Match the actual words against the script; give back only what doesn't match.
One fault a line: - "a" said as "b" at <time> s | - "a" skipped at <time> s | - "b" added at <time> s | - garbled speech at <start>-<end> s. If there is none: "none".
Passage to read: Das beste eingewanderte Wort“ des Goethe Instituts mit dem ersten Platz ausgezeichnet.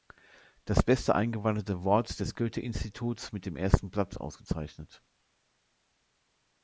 none